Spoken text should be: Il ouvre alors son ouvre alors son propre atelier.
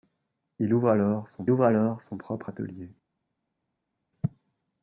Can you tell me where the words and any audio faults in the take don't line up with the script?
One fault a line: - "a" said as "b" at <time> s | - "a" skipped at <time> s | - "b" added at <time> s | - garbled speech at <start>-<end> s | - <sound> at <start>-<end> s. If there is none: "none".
none